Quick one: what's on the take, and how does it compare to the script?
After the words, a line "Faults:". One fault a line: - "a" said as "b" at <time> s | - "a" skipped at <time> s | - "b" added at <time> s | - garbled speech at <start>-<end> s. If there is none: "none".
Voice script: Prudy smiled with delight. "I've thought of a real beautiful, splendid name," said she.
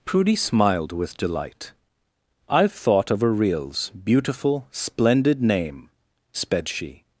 Prudy smiled with delight. "I've thought of a reals beautiful, splendid name," sped she.
Faults:
- "real" said as "reals" at 3.3 s
- "said" said as "sped" at 6.3 s